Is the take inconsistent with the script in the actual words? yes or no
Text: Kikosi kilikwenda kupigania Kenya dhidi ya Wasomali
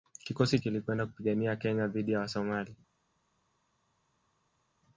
no